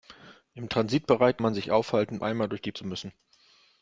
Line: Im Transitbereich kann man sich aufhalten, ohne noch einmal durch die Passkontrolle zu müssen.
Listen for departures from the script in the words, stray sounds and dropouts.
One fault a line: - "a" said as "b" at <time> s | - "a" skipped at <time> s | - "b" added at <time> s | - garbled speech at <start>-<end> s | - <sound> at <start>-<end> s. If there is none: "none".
- "kann" skipped at 1.4 s
- "ohne noch" skipped at 2.2 s
- "Passkontrolle" skipped at 2.7 s